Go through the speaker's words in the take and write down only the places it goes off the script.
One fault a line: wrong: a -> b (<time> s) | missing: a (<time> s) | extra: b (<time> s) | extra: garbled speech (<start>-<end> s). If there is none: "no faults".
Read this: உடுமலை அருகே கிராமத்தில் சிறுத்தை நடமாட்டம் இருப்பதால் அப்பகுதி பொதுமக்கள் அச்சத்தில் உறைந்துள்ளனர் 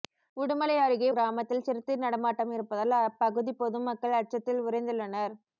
no faults